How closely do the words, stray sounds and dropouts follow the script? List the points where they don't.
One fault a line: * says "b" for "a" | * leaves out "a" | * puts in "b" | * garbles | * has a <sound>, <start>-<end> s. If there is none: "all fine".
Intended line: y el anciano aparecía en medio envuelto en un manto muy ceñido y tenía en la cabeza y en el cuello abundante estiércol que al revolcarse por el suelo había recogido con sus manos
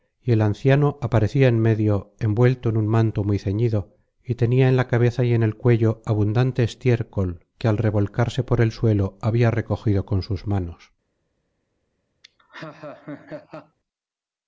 * has a laugh, 12.2-13.8 s